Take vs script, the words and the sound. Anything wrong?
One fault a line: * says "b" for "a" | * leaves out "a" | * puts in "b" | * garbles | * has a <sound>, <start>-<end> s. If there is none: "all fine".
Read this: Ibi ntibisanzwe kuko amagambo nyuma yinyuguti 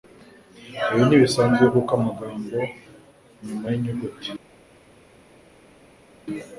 all fine